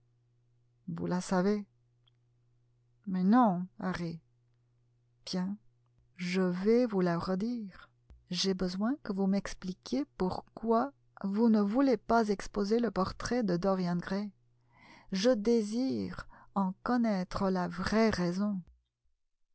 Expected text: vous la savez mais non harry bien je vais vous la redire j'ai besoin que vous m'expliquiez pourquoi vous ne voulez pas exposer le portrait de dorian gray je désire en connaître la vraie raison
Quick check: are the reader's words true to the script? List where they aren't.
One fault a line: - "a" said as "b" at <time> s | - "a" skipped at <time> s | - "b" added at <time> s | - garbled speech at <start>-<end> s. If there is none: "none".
none